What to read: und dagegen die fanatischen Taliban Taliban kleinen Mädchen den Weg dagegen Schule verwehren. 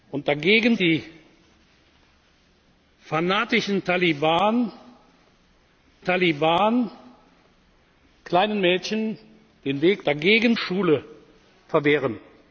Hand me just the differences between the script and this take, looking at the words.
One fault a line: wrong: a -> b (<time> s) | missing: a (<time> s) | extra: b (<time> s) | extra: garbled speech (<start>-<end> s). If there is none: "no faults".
no faults